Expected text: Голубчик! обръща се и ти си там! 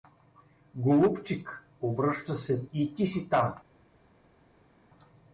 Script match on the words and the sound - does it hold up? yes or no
yes